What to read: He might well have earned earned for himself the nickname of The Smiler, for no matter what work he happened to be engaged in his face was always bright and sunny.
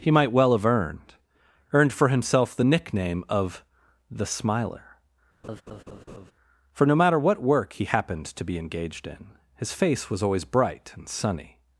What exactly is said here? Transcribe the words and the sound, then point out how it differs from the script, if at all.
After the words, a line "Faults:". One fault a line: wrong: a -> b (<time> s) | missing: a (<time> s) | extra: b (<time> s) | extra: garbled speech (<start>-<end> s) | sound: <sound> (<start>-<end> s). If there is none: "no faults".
He might well have earned earned for himself the nickname of The Smiler, for no matter what work he happened to be engaged in his face was always bright and sunny.
Faults:
sound: laugh (5.4-6.3 s)